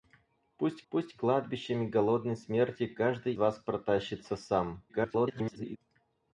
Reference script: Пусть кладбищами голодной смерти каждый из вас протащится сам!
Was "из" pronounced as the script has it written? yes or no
no